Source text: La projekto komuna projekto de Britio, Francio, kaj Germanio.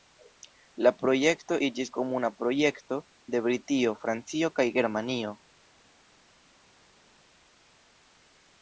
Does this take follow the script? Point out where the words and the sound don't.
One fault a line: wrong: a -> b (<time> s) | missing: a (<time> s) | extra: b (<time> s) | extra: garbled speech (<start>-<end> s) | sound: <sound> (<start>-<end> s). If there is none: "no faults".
extra: iĝis (1.7 s)